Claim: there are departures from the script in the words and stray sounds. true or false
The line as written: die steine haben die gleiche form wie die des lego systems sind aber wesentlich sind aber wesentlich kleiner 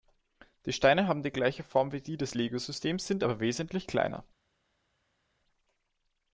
true